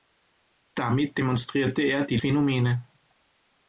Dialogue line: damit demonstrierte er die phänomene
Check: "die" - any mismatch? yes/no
no